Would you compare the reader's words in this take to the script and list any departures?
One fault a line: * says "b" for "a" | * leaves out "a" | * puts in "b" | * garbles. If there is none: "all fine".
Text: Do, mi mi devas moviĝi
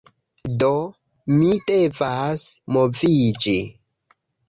* leaves out "mi"